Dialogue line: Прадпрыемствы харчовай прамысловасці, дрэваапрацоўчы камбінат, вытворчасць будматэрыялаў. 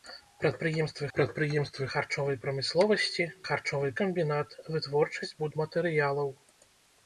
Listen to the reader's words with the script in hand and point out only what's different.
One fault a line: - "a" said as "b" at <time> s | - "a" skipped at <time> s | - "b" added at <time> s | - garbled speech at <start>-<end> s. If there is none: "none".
- "прадпрыемствы" added at 1.2 s
- "дрэваапрацоўчы" said as "харчовай" at 3.5 s